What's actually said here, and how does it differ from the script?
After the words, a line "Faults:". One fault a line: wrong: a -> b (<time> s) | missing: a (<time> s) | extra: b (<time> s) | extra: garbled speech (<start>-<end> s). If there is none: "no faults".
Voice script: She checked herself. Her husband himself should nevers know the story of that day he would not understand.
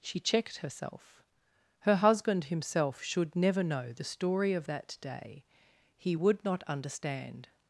She checked herself. Her husband himself should never know the story of that day he would not understand.
Faults:
wrong: nevers -> never (3.4 s)